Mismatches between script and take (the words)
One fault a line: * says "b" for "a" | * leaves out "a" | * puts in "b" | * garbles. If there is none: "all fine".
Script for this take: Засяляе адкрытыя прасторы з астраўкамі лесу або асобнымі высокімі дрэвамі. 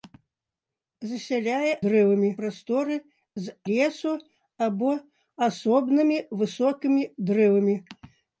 * says "дрэвамі" for "адкрытыя"
* leaves out "астраўкамі"